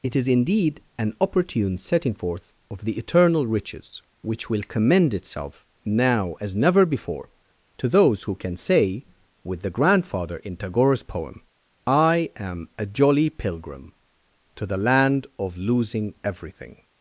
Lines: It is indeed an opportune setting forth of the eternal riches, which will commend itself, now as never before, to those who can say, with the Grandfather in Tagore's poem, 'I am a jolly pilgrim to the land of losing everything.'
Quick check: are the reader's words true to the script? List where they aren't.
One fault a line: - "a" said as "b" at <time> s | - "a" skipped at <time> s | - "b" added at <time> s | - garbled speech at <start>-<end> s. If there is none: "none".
none